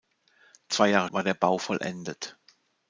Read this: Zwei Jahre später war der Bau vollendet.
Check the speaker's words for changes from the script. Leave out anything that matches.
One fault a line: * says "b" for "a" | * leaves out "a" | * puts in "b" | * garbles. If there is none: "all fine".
* leaves out "später"